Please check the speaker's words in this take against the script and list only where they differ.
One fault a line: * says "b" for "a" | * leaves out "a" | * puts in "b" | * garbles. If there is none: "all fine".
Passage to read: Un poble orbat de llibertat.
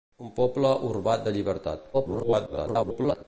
* garbles